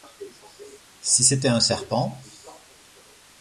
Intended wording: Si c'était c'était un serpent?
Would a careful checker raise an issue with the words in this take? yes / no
yes